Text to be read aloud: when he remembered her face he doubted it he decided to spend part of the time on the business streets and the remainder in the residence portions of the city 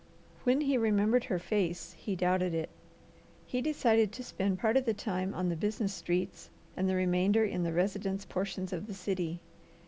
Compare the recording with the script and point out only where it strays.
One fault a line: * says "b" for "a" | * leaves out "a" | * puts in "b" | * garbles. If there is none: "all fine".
all fine